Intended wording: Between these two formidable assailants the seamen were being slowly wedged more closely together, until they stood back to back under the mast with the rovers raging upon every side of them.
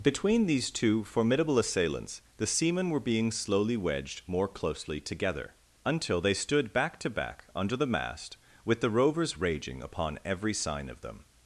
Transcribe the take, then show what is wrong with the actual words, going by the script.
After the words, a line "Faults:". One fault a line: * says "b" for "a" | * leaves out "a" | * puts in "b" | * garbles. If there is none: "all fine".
Between these two formidable assailants the seamen were being slowly wedged more closely together, until they stood back to back under the mast with the rovers raging upon every sign of them.
Faults:
* says "sign" for "side"